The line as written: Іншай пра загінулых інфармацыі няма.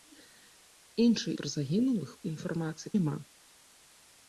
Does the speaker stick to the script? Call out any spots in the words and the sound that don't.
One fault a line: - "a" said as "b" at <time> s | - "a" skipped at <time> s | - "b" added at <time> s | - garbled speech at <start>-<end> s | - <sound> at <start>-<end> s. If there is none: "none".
none